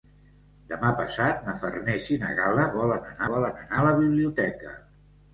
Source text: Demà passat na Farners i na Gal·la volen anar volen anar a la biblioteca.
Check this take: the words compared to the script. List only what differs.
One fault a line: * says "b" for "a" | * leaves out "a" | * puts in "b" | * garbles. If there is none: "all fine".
all fine